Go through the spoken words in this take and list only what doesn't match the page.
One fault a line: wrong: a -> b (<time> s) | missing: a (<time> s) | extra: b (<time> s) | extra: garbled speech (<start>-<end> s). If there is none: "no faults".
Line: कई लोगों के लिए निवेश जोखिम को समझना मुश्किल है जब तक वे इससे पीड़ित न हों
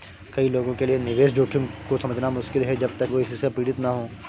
no faults